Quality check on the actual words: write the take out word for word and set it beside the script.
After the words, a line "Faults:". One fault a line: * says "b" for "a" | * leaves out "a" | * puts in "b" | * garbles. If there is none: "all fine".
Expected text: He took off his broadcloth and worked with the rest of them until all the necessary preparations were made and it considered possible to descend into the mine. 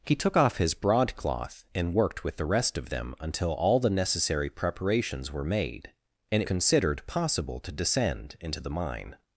He took off his broadcloth and worked with the rest of them until all the necessary preparations were made and it considered possible to descend into the mine.
Faults:
all fine